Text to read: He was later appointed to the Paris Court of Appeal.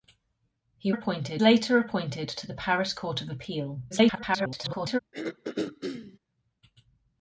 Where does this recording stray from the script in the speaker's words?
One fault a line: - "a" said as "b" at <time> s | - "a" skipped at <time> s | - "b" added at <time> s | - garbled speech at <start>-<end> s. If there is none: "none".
- "was" said as "appointed" at 0.9 s
- garbled speech at 3.9-5.0 s